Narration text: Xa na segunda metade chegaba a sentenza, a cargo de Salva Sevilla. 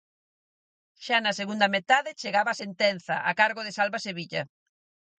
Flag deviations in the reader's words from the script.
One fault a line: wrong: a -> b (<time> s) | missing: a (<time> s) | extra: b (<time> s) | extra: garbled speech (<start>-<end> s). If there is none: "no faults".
no faults